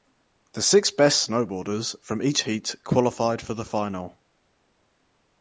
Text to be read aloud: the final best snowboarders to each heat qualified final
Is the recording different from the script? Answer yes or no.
yes